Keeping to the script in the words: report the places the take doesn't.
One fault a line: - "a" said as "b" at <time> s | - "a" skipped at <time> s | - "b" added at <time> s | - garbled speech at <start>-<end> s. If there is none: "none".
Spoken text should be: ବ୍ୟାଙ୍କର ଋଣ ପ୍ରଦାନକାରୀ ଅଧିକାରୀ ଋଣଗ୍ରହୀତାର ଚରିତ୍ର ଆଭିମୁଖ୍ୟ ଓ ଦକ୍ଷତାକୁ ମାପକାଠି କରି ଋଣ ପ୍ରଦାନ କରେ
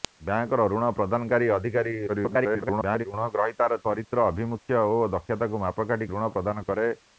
- garbled speech at 2.1-3.1 s
- "କରି" skipped at 6.1 s